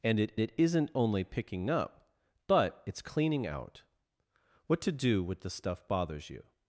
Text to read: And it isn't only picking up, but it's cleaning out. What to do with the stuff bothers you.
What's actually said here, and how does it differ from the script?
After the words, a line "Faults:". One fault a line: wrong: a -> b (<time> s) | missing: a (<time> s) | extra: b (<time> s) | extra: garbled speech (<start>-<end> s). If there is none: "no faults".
And it it isn't only picking up, but it's cleaning out. What to do with the stuff bothers you.
Faults:
extra: it (0.4 s)